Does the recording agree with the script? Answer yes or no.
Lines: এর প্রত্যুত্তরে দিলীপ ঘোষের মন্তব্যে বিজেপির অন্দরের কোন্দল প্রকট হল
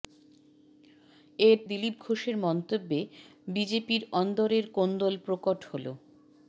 no